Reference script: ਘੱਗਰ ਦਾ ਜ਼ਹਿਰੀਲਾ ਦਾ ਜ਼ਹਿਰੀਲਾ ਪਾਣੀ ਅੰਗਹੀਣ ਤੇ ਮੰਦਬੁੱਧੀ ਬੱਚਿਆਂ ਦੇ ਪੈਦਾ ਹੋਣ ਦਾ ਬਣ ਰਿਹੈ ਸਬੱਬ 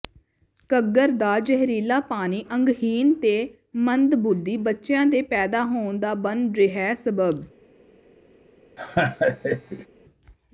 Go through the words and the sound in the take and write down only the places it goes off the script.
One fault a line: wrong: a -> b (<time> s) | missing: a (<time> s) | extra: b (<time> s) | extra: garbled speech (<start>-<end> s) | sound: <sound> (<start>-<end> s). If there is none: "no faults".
missing: ਦਾ ਜ਼ਹਿਰੀਲਾ (2.0 s)
sound: laugh (8.8-9.9 s)